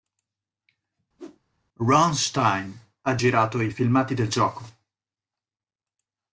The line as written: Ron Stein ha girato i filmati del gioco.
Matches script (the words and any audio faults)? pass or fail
fail